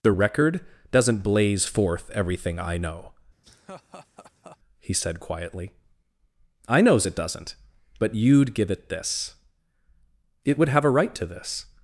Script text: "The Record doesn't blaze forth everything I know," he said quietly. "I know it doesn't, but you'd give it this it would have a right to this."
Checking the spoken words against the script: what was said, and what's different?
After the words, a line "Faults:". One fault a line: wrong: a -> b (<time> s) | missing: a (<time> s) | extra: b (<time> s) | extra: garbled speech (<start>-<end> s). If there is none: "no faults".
"The Record doesn't blaze forth everything I know," he said quietly. "I knows it doesn't, but you'd give it this it would have a right to this."
Faults:
wrong: know -> knows (6.8 s)